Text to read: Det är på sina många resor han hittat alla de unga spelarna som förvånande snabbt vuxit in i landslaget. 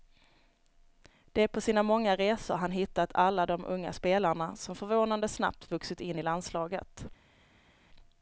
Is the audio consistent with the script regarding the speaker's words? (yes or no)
yes